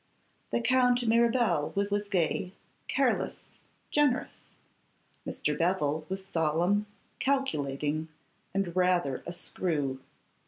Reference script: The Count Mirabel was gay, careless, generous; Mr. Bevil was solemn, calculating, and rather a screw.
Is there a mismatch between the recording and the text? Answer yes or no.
yes